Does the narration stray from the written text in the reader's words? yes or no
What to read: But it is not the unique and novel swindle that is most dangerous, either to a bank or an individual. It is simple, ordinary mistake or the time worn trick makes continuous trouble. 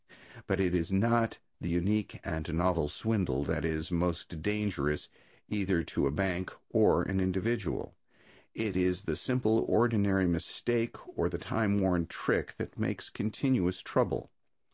yes